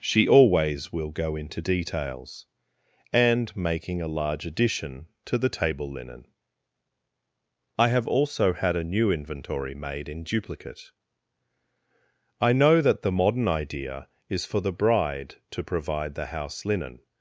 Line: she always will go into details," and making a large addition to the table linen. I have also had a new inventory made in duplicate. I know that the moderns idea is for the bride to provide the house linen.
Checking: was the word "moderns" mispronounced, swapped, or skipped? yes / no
yes